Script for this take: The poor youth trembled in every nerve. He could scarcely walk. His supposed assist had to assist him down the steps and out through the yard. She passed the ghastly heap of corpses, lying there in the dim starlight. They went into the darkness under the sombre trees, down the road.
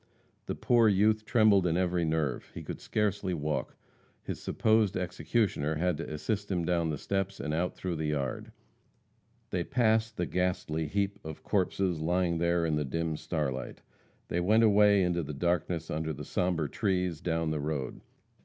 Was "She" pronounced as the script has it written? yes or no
no